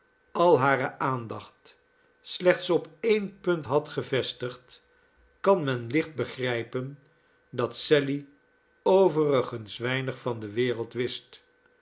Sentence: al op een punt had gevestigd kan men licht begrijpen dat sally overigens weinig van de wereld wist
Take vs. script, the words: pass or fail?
fail